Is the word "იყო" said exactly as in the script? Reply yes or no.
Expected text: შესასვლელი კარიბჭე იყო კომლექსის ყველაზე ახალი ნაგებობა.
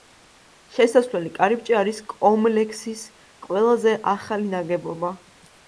no